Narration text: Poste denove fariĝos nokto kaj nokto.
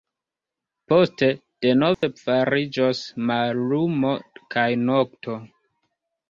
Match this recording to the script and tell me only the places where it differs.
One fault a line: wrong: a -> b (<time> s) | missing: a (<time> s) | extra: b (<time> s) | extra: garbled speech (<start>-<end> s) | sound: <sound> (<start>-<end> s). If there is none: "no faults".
sound: dropout (1.9-2.0 s)
wrong: nokto -> mallumo (3.3 s)